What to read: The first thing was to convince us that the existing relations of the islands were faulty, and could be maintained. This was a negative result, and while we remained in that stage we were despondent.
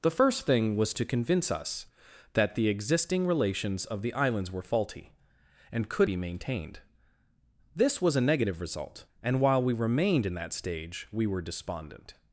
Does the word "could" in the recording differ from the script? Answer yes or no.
no